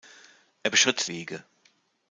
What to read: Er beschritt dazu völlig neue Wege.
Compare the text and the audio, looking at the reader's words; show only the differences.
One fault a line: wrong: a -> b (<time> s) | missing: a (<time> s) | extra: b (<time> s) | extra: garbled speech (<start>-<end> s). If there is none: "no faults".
missing: dazu völlig neue (1.1 s)